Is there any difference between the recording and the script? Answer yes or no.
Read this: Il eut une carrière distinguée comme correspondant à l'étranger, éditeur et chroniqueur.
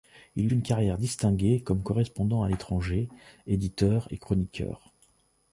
yes